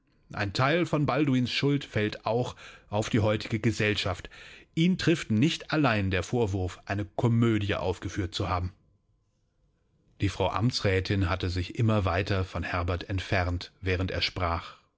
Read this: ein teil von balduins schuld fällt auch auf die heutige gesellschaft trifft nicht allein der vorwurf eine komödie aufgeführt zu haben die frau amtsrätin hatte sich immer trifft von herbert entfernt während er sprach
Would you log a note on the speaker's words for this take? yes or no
yes